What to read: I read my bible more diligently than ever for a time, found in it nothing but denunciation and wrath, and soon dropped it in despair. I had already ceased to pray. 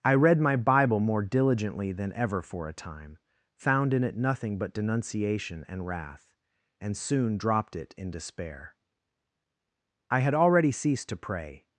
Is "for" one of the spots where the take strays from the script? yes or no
no